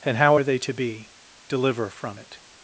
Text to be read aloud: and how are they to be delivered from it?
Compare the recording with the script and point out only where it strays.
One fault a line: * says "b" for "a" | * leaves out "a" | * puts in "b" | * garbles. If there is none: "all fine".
* says "deliver" for "delivered"